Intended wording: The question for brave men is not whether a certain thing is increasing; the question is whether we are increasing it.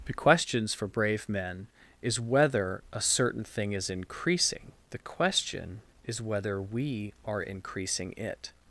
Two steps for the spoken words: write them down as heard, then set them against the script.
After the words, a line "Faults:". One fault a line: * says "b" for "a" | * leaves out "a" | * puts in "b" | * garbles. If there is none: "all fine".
The questions for brave men is whether a certain thing is increasing; the question is whether we are increasing it.
Faults:
* says "questions" for "question"
* leaves out "not"